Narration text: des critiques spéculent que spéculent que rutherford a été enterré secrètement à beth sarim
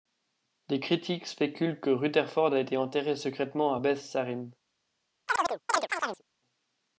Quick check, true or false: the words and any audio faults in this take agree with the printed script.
false